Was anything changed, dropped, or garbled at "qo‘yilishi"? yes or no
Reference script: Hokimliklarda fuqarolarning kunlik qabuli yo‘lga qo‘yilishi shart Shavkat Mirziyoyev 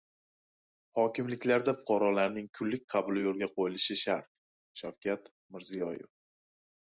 no